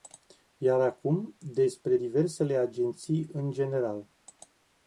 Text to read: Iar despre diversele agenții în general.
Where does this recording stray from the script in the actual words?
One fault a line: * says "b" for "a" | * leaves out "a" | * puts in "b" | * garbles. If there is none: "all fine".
* puts in "acum"